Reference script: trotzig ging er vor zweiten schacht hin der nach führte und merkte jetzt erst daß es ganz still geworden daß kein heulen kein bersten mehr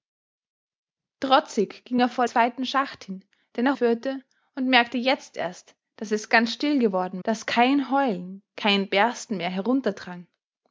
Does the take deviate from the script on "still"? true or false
false